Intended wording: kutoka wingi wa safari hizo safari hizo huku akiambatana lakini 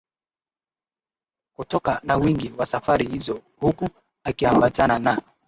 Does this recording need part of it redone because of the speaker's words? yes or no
yes